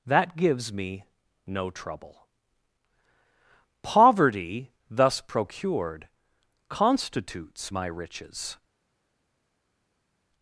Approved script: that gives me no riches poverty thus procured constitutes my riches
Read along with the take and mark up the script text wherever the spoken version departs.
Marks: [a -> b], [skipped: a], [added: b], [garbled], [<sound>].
that gives me no [riches -> trouble] poverty thus procured constitutes my riches